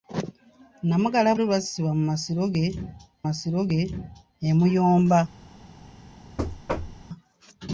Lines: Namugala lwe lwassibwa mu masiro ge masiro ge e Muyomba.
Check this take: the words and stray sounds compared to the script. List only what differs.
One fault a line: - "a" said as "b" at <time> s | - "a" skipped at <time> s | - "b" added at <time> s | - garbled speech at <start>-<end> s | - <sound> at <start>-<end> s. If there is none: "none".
- thud at 6.4-7.1 s